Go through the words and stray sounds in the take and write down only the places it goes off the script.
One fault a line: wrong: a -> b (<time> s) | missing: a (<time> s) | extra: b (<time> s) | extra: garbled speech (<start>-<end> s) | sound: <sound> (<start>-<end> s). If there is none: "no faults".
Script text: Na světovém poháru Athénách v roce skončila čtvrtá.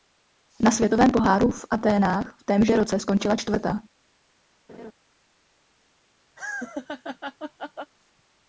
extra: v (1.5 s)
extra: témže (2.4 s)
sound: laugh (4.7-4.9 s)
sound: laugh (6.4-7.9 s)